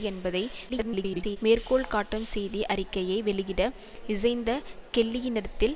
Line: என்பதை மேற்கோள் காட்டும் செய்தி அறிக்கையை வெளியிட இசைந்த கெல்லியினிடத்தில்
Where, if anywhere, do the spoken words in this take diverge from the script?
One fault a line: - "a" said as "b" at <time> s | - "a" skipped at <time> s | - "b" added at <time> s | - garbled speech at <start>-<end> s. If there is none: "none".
- garbled speech at 0.7-1.4 s